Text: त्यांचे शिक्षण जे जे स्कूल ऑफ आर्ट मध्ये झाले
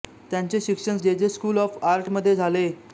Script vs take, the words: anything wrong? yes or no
no